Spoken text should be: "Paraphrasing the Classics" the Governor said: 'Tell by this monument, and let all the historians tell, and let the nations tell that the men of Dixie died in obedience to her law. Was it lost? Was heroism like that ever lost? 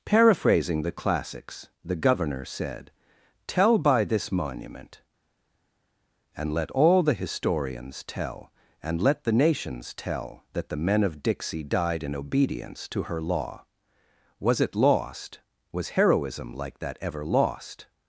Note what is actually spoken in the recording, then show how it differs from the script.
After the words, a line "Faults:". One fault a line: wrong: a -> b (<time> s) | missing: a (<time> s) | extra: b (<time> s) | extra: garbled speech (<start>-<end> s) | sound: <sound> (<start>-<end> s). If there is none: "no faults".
"Paraphrasing the Classics" the Governor said: 'Tell by this monument, and let all the historians tell, and let the nations tell that the men of Dixie died in obedience to her law. Was it lost? Was heroism like that ever lost?
Faults:
no faults